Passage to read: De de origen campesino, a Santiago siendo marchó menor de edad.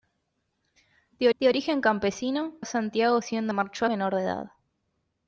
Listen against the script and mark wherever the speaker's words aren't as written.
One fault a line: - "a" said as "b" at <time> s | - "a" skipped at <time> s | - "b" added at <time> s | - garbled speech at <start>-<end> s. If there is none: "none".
none